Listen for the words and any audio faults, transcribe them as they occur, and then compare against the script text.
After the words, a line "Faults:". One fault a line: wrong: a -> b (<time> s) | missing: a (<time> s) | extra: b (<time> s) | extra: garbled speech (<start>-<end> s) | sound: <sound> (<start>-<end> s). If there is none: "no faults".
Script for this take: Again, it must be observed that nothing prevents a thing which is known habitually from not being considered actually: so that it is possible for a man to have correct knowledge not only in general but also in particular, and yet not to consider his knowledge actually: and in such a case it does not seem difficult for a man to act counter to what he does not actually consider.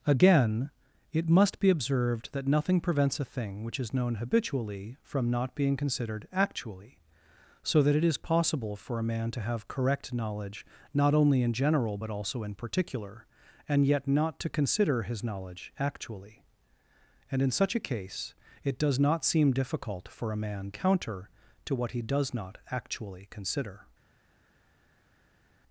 Again, it must be observed that nothing prevents a thing which is known habitually from not being considered actually: so that it is possible for a man to have correct knowledge not only in general but also in particular, and yet not to consider his knowledge actually: and in such a case it does not seem difficult for a man counter to what he does not actually consider.
Faults:
missing: to act (20.7 s)